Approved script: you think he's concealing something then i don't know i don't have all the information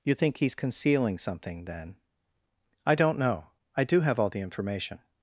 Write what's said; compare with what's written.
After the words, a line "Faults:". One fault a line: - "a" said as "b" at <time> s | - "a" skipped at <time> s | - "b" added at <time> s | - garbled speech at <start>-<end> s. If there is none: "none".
you think he's concealing something then i don't know i do have all the information
Faults:
- "don't" said as "do" at 3.8 s